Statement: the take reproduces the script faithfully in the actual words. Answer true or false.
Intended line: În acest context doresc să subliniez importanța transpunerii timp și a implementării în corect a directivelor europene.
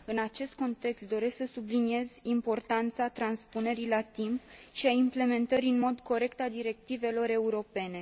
false